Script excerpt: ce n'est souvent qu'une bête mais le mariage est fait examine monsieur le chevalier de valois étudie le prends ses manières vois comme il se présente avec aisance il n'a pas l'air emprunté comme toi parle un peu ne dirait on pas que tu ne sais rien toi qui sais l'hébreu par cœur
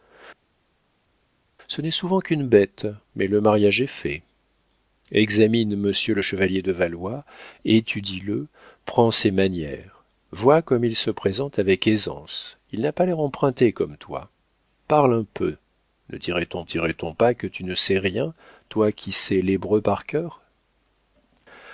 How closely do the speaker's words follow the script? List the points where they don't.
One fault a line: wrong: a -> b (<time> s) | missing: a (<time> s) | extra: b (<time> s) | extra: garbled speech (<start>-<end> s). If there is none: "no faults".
extra: dirait on (16.6 s)